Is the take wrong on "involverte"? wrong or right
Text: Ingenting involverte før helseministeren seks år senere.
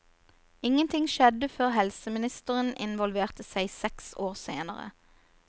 wrong